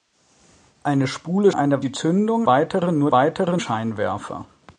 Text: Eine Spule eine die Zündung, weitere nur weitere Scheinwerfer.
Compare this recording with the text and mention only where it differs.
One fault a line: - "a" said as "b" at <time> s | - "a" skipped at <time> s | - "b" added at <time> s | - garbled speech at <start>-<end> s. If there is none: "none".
none